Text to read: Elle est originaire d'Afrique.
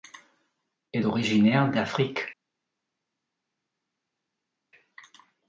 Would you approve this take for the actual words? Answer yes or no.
no